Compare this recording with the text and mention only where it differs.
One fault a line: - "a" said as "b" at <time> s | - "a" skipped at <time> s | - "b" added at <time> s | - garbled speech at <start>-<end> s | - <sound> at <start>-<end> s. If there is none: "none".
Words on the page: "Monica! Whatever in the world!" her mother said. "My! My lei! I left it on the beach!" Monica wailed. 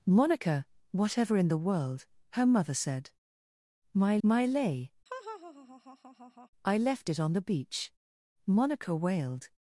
- laugh at 5.1-6.5 s